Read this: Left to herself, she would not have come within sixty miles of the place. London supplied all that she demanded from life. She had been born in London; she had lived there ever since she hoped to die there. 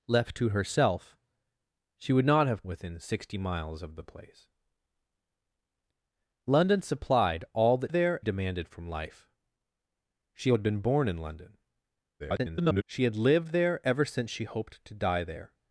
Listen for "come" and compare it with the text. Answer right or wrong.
wrong